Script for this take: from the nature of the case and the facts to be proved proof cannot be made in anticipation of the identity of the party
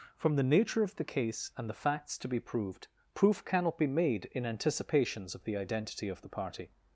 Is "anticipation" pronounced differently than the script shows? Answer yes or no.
yes